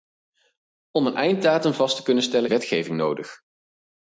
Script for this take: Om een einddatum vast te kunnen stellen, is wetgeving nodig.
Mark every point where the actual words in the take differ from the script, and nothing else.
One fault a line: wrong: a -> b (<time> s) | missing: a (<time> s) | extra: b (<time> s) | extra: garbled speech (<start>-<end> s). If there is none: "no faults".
missing: is (2.5 s)